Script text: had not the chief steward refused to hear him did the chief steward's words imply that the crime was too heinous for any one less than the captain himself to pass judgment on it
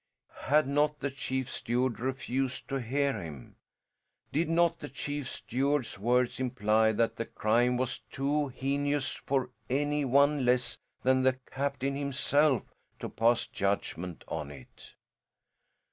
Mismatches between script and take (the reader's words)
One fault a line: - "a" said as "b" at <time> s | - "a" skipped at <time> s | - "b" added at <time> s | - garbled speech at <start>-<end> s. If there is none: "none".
- "not" added at 4.5 s